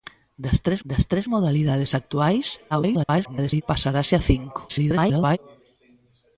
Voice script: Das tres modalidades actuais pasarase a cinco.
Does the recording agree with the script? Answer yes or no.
no